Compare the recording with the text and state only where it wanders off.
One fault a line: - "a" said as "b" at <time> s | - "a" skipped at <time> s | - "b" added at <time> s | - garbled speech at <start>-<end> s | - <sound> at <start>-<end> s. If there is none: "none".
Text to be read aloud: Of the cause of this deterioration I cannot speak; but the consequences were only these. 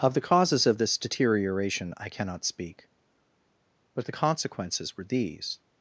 - "cause" said as "causes" at 0.3 s
- "only" skipped at 5.0 s